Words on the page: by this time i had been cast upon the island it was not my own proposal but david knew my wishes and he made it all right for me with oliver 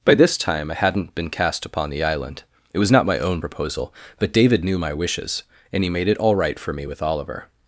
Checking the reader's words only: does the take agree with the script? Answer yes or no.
no